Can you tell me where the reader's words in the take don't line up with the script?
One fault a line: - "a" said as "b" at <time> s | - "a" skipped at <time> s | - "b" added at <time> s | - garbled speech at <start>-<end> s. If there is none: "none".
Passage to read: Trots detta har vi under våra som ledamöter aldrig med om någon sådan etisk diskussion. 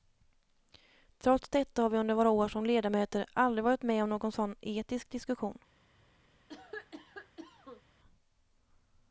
- "år" added at 2.3 s
- "varit" added at 3.6 s